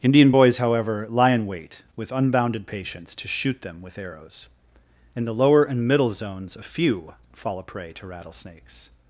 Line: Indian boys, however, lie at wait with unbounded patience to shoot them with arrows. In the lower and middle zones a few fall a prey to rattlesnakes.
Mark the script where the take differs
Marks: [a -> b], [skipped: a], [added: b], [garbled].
Indian boys, however, lie [at -> in] wait with unbounded patience to shoot them with arrows. In the lower and middle zones a few fall a prey to rattlesnakes.